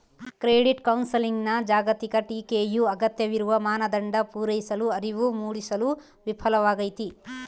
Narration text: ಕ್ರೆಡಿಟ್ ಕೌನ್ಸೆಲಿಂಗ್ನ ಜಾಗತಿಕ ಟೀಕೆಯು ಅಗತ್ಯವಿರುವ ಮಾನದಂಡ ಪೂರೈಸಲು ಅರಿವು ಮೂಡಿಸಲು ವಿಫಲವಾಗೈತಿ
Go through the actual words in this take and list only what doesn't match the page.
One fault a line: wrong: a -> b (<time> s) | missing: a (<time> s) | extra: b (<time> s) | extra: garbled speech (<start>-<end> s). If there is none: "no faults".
no faults